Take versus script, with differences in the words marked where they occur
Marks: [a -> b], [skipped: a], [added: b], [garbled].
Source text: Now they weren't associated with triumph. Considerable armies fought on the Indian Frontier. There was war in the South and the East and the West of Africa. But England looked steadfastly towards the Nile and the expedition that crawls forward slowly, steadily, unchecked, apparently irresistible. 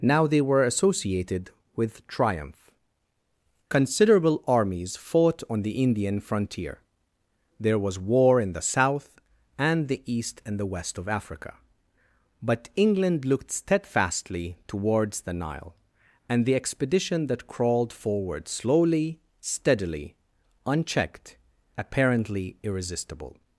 Now they [weren't -> were] associated with triumph. Considerable armies fought on the Indian Frontier. There was war in the South and the East and the West of Africa. But England looked steadfastly towards the Nile and the expedition that [crawls -> crawled] forward slowly, steadily, unchecked, apparently irresistible.